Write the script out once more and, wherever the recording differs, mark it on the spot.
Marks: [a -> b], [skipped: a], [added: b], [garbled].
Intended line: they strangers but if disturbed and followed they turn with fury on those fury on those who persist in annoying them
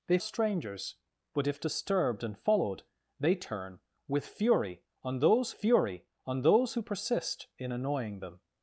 they strangers but if disturbed and followed they turn with fury on those fury on those who persist in annoying them